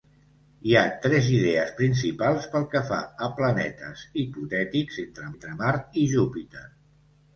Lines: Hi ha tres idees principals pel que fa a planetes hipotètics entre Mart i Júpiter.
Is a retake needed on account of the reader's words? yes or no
yes